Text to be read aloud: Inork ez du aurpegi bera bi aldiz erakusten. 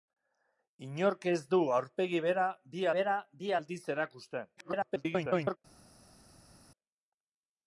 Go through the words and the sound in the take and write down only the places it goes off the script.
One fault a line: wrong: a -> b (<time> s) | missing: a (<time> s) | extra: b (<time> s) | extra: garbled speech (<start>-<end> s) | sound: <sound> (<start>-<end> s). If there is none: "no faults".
extra: bera bi (3.0 s)
extra: garbled speech (4.6-5.6 s)